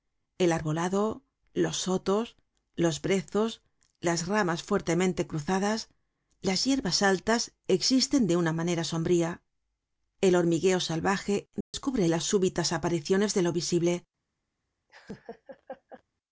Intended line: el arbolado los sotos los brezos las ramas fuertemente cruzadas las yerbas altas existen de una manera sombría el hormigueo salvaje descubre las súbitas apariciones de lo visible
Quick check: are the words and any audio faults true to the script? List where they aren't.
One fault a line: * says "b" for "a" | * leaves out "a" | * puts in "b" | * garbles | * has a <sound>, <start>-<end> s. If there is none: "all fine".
* has a dropout, 11.6-11.7 s
* has a laugh, 14.9-16.0 s